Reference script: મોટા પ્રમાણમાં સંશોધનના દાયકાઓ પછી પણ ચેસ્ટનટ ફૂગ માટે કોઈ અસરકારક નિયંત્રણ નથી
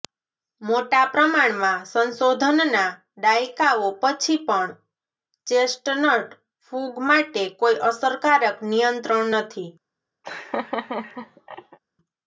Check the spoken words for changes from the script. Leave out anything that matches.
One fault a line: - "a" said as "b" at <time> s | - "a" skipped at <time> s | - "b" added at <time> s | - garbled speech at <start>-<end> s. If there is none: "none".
none